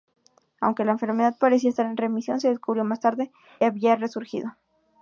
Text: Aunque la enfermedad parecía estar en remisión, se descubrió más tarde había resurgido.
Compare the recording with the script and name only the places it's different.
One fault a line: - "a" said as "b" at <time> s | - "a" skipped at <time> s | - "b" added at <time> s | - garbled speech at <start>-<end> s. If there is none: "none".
none